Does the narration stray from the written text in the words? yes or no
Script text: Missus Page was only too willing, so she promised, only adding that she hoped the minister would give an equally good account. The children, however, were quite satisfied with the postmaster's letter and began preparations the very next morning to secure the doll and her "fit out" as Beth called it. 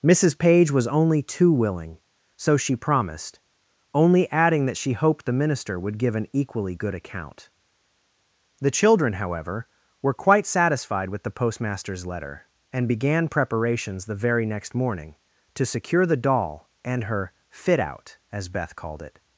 no